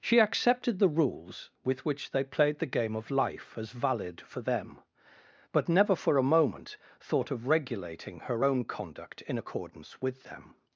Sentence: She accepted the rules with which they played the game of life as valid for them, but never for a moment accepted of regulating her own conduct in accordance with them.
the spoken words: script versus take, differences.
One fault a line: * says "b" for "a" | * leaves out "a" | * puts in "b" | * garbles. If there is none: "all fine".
* says "thought" for "accepted"